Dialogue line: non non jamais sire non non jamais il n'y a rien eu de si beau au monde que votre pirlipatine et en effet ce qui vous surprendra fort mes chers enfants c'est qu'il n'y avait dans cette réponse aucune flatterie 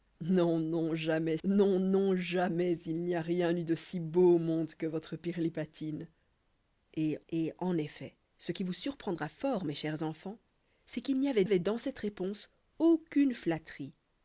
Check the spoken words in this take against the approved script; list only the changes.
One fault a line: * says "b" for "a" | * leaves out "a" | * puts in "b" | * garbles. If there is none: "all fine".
* leaves out "sire"
* puts in "et"
* puts in "avait"